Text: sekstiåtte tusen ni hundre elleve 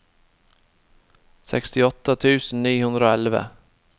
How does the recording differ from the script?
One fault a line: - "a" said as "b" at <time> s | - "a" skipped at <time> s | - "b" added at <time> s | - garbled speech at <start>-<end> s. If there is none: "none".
- "og" added at 3.1 s